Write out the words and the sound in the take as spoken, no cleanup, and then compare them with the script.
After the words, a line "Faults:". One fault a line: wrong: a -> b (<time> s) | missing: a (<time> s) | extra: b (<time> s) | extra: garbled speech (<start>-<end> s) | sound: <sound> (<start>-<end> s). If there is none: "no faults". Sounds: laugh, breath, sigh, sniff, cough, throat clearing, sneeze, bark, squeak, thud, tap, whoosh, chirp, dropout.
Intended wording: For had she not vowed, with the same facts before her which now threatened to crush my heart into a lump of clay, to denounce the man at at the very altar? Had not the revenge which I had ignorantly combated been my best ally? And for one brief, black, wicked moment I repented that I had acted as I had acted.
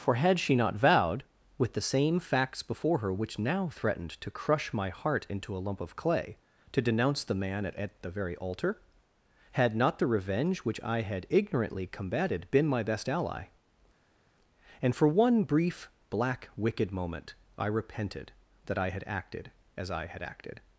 For had she not vowed, with the same facts before her which now threatened to crush my heart into a lump of clay, to denounce the man at at the very altar? Had not the revenge which I had ignorantly combated been my best ally? And for one brief, black, wicked moment I repented that I had acted as I had acted.
Faults:
no faults